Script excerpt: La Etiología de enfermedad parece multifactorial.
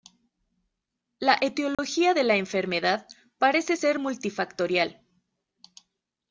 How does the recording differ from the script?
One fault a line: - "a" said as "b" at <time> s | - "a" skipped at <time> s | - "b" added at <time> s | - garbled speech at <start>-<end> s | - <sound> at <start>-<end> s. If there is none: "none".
- dropout at 1.7-1.8 s
- "la" added at 2.2 s
- "ser" added at 3.7 s